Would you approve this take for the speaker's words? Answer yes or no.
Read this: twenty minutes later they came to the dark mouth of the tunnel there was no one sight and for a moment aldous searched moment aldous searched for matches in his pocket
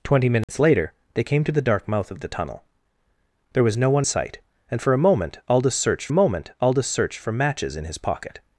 yes